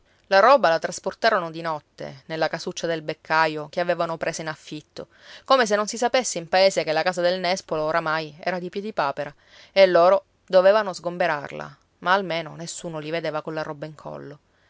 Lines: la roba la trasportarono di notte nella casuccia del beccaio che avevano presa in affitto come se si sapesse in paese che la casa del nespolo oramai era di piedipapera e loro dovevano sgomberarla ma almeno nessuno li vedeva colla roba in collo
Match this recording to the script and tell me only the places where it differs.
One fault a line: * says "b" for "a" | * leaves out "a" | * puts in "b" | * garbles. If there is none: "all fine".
* puts in "non"